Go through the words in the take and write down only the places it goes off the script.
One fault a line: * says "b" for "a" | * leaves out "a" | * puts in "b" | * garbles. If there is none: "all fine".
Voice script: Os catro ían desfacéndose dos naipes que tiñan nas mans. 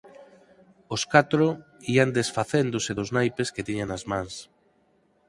all fine